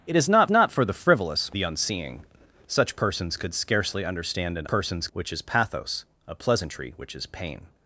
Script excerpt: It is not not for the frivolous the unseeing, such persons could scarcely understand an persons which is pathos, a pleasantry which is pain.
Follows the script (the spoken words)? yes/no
yes